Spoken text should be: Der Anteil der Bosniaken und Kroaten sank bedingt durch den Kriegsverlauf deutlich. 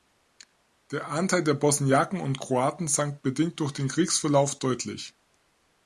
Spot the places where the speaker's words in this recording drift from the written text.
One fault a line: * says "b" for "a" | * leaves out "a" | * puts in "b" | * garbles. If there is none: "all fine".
all fine